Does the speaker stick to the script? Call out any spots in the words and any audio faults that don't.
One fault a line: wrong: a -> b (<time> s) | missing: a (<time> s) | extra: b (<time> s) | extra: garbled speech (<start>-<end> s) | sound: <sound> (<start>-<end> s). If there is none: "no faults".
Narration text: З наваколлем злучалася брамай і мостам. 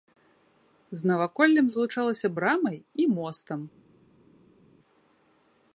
no faults